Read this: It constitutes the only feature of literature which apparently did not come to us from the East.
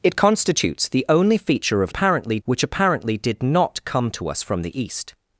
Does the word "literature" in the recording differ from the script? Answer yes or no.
yes